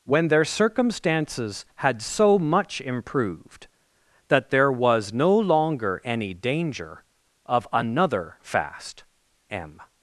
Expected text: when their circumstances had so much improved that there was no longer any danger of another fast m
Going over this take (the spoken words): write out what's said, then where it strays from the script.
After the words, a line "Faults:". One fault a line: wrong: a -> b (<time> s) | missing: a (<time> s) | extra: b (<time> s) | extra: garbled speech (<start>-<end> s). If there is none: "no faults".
when their circumstances had so much improved that there was no longer any danger of another fast m
Faults:
no faults